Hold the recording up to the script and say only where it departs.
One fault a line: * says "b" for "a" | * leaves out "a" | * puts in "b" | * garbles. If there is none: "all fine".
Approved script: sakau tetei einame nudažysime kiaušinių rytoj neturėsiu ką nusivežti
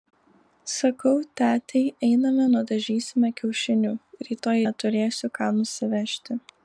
all fine